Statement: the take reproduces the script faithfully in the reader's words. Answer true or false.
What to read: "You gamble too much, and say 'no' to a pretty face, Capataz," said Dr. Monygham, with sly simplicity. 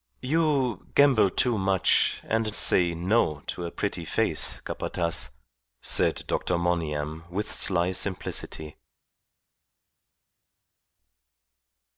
true